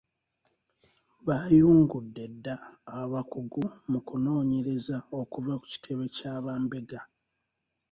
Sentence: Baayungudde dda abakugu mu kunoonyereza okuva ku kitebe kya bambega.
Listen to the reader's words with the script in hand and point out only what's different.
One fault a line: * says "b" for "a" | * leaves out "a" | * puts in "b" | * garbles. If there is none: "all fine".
all fine